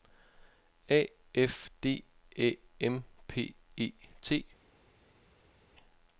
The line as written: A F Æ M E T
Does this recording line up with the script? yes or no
no